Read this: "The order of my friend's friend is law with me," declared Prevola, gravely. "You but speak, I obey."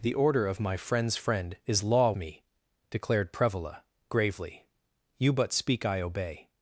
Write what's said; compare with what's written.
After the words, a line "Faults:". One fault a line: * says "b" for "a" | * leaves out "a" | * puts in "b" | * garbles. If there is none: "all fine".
"The order of my friend's friend is law me," declared Prevola, gravely. "You but speak, I obey."
Faults:
* leaves out "with"